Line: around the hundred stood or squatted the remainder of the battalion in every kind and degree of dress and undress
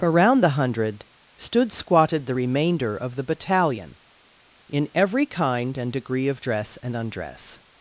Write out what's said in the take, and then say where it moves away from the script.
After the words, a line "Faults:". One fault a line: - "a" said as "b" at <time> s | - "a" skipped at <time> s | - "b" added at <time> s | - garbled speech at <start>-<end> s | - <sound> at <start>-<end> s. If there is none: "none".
around the hundred stood squatted the remainder of the battalion in every kind and degree of dress and undress
Faults:
- "or" skipped at 1.7 s